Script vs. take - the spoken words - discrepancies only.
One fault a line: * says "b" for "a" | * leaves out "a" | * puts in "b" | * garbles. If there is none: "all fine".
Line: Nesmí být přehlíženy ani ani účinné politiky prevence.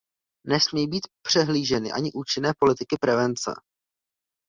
* leaves out "ani"